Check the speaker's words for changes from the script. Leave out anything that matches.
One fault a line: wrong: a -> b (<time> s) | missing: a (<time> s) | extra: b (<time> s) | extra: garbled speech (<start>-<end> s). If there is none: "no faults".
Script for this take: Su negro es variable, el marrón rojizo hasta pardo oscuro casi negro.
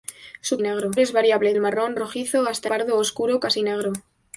no faults